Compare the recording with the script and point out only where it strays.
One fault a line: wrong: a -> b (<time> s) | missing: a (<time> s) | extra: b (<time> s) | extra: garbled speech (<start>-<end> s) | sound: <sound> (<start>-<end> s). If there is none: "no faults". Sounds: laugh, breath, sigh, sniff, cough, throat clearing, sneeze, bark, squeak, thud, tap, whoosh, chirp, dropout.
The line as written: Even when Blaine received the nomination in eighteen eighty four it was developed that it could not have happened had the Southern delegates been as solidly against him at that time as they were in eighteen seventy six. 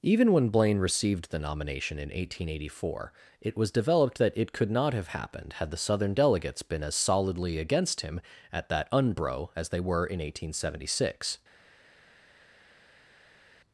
wrong: time -> unbro (8.9 s)